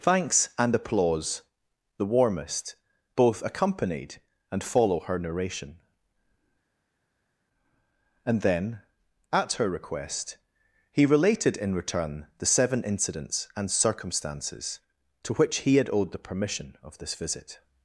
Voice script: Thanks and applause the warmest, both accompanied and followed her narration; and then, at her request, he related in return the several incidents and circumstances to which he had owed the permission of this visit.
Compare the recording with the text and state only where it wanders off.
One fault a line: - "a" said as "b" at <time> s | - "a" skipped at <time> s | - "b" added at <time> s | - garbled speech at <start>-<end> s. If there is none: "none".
- "followed" said as "follow" at 4.6 s
- "several" said as "seven" at 12.4 s